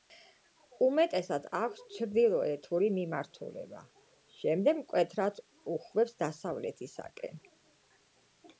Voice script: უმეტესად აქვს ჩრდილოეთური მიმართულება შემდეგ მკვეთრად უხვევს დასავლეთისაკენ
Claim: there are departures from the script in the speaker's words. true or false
false